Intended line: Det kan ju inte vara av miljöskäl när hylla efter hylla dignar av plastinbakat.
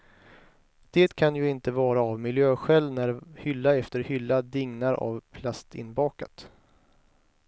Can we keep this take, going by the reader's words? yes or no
yes